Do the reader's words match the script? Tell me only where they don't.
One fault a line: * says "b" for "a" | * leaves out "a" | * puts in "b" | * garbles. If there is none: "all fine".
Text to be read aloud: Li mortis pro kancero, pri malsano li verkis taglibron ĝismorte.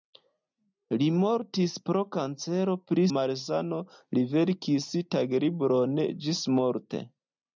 all fine